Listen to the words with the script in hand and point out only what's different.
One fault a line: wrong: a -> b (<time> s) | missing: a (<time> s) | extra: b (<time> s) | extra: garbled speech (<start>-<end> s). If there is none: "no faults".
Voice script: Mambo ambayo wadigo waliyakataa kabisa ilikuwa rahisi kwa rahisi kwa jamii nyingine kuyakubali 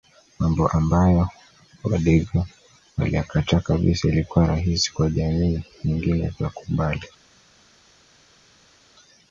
missing: rahisi kwa (5.1 s)